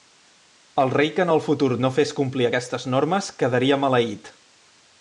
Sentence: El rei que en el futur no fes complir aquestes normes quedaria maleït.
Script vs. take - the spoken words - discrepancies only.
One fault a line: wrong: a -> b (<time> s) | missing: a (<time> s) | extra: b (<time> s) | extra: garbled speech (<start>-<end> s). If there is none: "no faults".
no faults